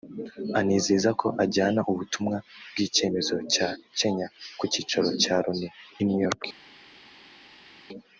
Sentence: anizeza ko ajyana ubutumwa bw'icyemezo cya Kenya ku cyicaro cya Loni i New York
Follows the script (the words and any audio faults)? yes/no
yes